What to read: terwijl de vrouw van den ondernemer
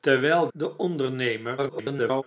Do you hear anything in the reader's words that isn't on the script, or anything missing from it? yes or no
yes